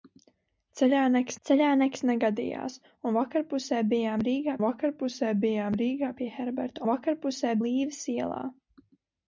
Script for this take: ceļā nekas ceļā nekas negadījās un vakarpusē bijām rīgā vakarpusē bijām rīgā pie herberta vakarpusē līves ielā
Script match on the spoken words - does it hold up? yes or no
yes